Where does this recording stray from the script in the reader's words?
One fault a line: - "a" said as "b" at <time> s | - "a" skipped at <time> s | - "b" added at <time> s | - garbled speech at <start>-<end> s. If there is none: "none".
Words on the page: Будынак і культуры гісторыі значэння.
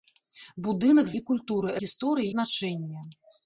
none